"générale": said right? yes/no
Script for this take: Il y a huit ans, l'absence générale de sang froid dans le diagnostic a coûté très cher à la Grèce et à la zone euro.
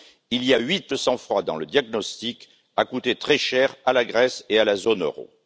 no